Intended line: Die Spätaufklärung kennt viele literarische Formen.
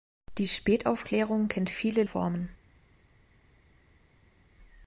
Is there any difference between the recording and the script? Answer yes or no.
yes